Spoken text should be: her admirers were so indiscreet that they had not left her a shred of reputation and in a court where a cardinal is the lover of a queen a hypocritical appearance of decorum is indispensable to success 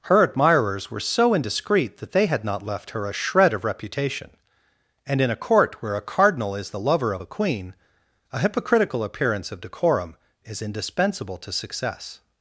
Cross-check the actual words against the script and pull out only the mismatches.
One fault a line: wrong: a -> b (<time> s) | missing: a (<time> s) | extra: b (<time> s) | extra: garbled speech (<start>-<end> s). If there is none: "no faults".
no faults